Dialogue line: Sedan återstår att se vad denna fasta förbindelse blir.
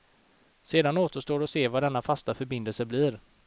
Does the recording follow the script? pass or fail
pass